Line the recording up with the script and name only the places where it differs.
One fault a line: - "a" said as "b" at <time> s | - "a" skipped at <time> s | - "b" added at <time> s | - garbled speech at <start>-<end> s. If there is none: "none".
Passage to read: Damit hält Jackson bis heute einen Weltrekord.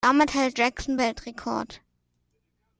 - "bis heute einen" skipped at 1.0 s